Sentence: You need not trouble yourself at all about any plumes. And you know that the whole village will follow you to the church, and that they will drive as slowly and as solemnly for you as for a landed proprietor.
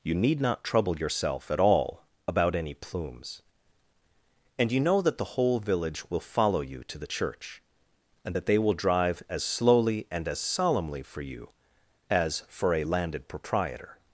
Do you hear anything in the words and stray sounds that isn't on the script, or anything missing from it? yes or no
no